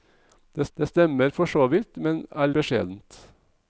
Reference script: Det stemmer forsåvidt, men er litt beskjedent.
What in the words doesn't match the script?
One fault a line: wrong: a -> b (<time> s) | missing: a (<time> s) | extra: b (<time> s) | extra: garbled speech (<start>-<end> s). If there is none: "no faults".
extra: det (0.8 s)
missing: litt (2.5 s)